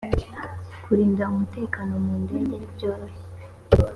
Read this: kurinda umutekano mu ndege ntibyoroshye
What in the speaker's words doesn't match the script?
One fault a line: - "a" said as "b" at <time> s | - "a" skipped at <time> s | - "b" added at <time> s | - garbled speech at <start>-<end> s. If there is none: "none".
none